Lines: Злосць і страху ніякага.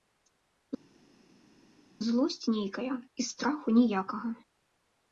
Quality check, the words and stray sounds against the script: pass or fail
fail